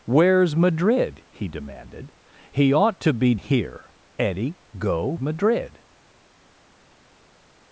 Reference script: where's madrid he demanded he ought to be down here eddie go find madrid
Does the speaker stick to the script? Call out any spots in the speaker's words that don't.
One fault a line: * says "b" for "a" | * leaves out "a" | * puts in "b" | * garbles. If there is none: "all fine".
* leaves out "down"
* leaves out "find"